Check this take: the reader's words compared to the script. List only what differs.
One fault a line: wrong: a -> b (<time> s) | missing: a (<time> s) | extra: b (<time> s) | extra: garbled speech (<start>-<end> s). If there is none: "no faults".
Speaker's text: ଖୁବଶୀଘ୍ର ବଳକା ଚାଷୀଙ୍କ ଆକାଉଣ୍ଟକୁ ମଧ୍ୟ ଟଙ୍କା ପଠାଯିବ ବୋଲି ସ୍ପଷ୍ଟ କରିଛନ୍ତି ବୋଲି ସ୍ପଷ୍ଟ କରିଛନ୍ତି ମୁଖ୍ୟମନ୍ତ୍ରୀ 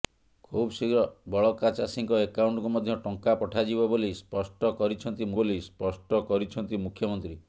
no faults